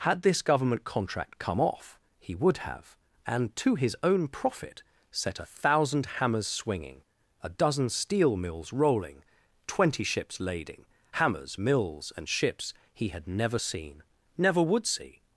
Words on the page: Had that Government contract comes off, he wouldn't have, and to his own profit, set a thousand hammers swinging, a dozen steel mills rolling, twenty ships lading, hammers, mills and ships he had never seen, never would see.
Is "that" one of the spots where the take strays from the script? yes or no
yes